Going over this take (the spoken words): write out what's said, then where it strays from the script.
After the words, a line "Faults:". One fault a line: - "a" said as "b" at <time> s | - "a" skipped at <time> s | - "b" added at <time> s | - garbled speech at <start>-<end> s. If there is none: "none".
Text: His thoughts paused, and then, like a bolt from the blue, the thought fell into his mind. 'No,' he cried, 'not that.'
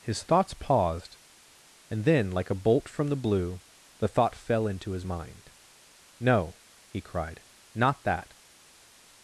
His thoughts paused, and then, like a bolt from the blue, the thought fell into his mind. 'No,' he cried, 'not that.'
Faults:
none